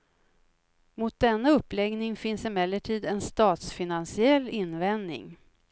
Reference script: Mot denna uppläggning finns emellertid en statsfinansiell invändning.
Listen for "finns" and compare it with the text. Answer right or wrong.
right